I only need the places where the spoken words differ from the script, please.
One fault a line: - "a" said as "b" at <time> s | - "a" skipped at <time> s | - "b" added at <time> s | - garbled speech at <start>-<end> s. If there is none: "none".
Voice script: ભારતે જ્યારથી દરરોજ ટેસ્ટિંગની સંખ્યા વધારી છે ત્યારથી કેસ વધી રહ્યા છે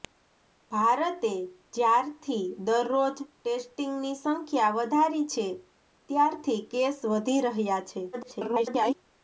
- garbled speech at 8.1-9.0 s